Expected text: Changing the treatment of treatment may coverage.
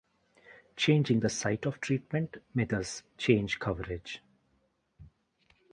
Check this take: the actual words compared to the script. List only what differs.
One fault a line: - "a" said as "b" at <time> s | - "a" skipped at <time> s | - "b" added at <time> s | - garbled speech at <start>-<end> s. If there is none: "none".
- "treatment" said as "site" at 1.3 s
- "thus change" added at 2.6 s